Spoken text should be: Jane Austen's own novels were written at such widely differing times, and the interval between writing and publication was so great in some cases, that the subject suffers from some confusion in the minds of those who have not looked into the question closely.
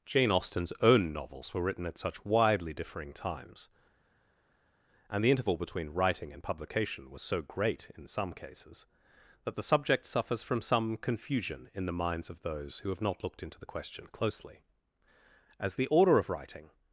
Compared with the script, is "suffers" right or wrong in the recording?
right